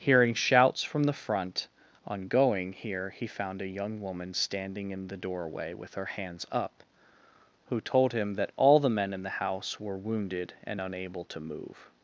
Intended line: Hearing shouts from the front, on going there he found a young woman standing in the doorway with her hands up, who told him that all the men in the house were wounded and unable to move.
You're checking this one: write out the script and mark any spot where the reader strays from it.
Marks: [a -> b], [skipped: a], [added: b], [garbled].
Hearing shouts from the front, on going [there -> here] he found a young woman standing in the doorway with her hands up, who told him that all the men in the house were wounded and unable to move.